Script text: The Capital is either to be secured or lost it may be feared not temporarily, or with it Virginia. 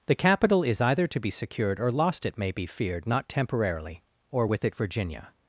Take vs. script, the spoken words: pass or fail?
pass